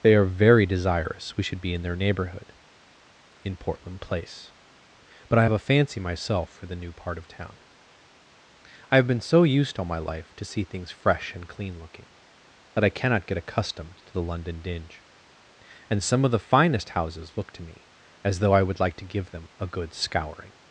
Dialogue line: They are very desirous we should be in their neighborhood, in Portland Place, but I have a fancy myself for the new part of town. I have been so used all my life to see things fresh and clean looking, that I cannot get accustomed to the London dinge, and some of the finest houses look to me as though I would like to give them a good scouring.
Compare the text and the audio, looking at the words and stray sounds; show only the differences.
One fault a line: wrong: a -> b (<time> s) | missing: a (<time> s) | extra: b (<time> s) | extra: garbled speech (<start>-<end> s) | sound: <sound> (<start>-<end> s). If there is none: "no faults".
no faults